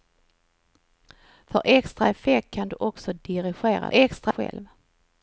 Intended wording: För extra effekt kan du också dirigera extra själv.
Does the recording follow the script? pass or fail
pass